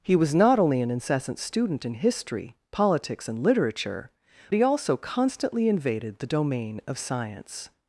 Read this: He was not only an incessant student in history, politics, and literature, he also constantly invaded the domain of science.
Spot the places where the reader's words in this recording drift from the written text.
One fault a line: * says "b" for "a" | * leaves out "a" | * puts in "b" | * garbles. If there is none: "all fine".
all fine